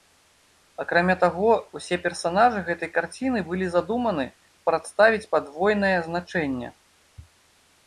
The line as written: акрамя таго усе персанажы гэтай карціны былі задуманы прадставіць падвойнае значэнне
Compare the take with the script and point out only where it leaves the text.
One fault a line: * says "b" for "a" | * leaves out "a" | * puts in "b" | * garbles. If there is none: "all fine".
all fine